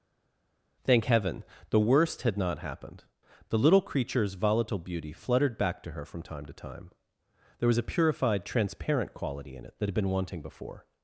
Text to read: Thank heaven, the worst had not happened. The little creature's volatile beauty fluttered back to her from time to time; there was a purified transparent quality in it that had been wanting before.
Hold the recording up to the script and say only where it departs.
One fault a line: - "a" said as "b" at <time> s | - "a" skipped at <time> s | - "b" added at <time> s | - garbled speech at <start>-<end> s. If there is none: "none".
none